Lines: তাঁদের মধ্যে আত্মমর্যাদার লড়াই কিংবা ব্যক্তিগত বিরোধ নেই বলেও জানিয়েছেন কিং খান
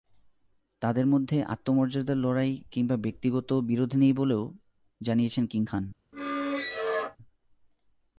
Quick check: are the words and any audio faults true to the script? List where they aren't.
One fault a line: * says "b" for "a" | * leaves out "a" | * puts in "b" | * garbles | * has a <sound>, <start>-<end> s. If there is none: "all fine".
* has a squeak, 6.1-7.2 s